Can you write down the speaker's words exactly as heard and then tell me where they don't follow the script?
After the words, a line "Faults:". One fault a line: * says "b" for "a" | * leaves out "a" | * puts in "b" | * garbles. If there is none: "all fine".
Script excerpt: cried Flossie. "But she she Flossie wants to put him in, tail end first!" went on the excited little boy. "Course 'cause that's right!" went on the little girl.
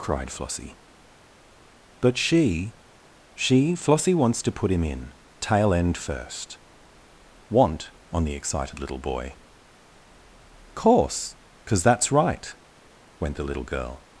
cried Flossie. "But she she Flossie wants to put him in, tail end first!" want on the excited little boy. "Course 'cause that's right!" went the little girl.
Faults:
* says "want" for "went"
* leaves out "on"